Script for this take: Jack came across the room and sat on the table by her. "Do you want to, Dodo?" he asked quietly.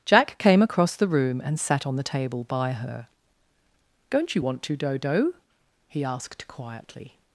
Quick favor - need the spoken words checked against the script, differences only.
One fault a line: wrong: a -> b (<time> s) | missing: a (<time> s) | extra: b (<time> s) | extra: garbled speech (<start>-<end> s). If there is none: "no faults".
wrong: Do -> Don't (4.1 s)